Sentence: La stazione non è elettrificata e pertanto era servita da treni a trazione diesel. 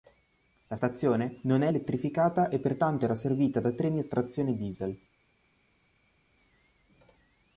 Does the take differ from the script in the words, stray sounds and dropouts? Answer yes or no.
no